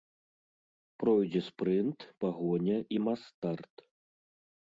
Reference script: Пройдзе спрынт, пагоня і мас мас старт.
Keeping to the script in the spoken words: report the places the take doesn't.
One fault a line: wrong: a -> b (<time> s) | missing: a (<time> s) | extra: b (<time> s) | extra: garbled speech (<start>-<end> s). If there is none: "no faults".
missing: мас (3.2 s)